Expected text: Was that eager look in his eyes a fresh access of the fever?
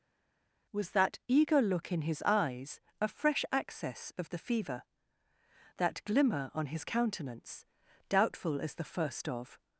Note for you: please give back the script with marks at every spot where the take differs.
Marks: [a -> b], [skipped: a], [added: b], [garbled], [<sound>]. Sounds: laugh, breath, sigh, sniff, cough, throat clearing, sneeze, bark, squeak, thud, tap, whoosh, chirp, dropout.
Was that eager look in his eyes a fresh access of the fever? [added: That glimmer on his countenance doubtful as the first of]